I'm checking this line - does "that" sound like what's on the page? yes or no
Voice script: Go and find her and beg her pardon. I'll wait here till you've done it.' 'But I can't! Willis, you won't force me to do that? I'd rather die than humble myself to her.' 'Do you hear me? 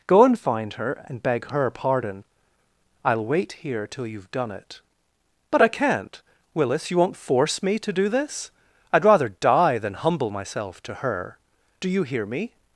no